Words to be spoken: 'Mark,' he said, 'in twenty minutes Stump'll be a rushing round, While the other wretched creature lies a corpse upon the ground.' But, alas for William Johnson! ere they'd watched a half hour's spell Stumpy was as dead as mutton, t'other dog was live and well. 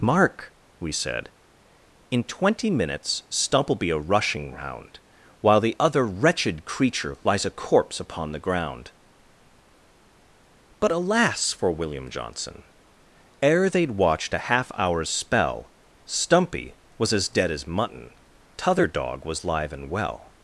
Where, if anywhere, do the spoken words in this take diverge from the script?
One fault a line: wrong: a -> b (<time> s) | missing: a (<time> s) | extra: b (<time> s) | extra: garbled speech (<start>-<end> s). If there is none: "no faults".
wrong: he -> we (0.8 s)